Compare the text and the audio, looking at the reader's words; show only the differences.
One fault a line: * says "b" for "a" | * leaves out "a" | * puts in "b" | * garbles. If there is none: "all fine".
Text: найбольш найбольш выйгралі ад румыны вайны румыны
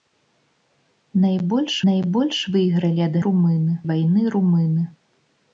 all fine